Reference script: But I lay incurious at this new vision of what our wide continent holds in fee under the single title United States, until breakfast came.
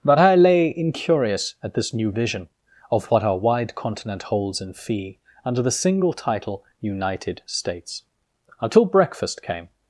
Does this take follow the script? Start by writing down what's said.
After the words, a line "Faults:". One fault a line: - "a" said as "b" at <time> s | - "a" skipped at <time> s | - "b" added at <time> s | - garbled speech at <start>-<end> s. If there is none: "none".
But I lay incurious at this new vision of what our wide continent holds in fee under the single title United States, until breakfast came.
Faults:
none